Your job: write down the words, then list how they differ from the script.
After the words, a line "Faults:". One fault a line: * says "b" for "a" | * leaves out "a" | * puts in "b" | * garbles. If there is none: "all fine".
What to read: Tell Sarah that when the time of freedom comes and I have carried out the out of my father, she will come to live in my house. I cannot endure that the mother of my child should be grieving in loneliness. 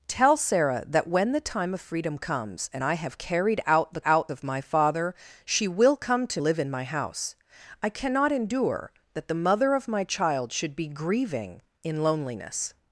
Tell Sarah that when the time of freedom comes and I have carried out the out of my father, she will come to live in my house. I cannot endure that the mother of my child should be grieving in loneliness.
Faults:
all fine